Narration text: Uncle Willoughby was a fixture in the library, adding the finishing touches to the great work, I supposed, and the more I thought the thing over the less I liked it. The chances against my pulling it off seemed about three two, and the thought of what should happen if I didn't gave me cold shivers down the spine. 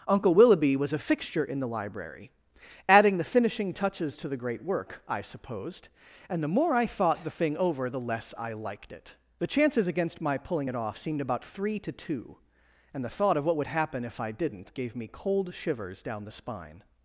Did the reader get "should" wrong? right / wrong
wrong